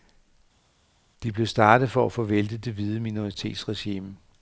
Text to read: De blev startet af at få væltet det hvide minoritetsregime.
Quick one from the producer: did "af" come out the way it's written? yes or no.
no